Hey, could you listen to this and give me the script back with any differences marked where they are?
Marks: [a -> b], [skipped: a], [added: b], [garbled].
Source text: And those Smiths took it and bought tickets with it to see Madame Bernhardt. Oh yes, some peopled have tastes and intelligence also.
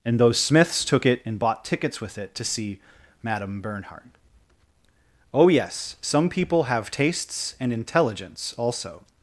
And those Smiths took it and bought tickets with it to see Madame Bernhardt. Oh yes, some [peopled -> people] have tastes and intelligence also.